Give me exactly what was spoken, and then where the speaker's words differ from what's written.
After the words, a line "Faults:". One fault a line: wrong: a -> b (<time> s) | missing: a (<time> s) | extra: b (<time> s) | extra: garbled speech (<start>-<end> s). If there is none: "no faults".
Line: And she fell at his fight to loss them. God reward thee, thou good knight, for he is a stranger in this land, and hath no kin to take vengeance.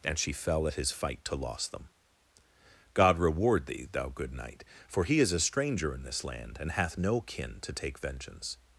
And she fell at his fight to loss them. God reward thee, thou good knight, for he is a stranger in this land, and hath no kin to take vengeance.
Faults:
no faults